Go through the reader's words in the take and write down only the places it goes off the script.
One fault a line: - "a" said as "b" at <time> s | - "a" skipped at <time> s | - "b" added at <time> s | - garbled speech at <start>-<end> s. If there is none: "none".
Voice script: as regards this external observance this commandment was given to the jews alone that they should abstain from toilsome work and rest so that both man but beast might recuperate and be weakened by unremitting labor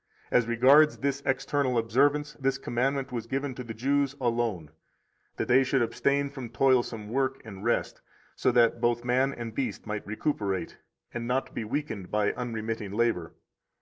- "but" said as "and" at 9.3 s
- "not" added at 11.3 s